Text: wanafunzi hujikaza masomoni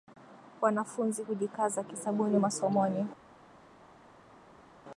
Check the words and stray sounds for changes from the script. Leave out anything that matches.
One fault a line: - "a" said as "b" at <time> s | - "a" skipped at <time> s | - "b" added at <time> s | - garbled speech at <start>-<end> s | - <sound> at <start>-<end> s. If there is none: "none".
- "kisabuni" added at 1.8 s